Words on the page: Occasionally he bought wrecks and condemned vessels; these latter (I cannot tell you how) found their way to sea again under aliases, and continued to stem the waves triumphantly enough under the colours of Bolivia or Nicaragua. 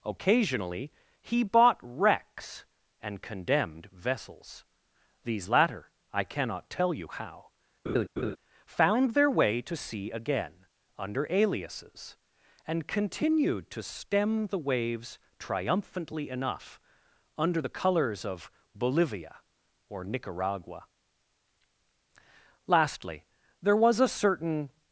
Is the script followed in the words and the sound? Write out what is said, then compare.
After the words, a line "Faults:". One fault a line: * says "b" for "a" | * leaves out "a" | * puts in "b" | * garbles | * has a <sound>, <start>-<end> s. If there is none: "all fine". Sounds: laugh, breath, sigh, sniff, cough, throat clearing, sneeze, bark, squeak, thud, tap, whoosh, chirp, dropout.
Occasionally he bought wrecks and condemned vessels; these latter (I cannot tell you how) found their way to sea again under aliases, and continued to stem the waves triumphantly enough under the colours of Bolivia or Nicaragua. Lastly, there was a certain
Faults:
* has a laugh, 7.9-8.4 s
* puts in "Lastly there was a certain"